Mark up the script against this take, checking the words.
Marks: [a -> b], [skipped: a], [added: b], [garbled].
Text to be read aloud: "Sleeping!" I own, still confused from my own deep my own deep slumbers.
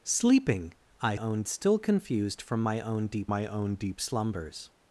"Sleeping!" I own, still confused from my own deep my own deep slumbers.